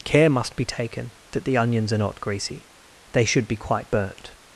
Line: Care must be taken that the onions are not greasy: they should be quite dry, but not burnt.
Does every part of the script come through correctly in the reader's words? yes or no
no